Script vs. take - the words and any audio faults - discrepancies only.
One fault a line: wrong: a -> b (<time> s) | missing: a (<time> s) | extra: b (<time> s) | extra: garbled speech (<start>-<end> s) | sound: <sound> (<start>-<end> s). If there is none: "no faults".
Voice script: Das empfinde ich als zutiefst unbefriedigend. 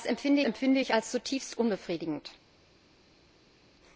extra: empfinde (0.5 s)